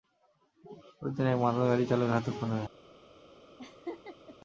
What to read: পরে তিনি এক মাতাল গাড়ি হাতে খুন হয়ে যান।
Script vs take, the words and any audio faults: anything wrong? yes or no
yes